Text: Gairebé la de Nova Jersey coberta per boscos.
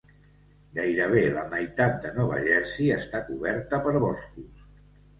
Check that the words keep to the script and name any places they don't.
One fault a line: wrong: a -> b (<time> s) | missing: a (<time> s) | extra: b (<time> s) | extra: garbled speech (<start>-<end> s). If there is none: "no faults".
extra: meitat (1.5 s)
extra: està (3.0 s)